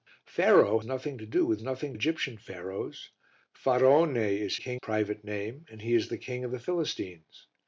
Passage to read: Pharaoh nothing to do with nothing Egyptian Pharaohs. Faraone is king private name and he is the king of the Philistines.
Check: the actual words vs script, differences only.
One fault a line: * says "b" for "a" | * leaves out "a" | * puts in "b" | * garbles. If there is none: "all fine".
all fine